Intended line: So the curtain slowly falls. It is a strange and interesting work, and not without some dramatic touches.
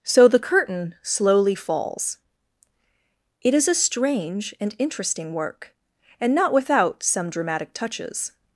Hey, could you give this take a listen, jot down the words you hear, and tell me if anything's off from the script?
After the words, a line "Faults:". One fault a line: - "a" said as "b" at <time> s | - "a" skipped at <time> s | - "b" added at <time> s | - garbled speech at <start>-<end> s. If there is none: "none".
So the curtain slowly falls. It is a strange and interesting work, and not without some dramatic touches.
Faults:
none